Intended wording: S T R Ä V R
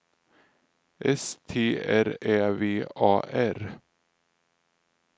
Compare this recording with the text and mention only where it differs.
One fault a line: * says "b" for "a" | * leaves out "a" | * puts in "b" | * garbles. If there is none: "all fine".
* puts in "A"